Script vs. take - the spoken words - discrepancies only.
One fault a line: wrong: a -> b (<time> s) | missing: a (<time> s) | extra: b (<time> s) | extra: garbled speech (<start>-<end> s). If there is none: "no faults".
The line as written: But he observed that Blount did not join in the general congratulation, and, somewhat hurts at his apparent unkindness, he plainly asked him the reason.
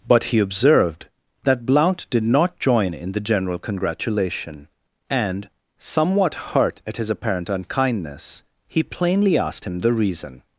wrong: hurts -> hurt (6.3 s)